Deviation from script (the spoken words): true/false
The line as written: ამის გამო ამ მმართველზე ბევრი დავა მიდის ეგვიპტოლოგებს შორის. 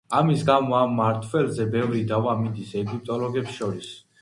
false